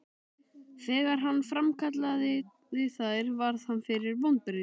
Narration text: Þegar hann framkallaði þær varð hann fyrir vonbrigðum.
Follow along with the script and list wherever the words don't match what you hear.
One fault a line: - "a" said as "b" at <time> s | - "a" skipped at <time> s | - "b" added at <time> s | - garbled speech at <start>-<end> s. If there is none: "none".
none